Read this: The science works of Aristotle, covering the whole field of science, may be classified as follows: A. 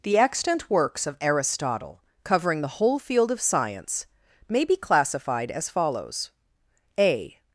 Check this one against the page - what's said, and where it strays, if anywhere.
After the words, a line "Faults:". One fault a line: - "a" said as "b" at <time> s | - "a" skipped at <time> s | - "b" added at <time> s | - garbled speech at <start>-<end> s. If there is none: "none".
The extant works of Aristotle, covering the whole field of science, may be classified as follows: A.
Faults:
- "science" said as "extant" at 0.2 s